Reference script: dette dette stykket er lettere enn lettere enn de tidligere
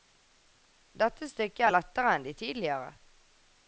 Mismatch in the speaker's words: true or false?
true